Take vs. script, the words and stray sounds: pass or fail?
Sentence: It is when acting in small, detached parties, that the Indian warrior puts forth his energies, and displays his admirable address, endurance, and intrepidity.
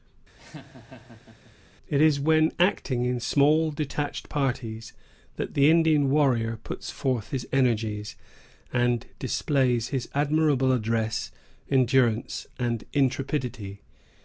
fail